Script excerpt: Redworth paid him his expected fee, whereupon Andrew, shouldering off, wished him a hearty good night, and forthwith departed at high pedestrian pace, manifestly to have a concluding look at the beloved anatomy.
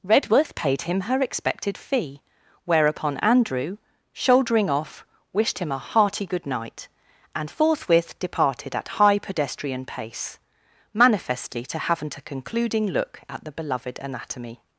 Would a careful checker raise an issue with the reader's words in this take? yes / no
yes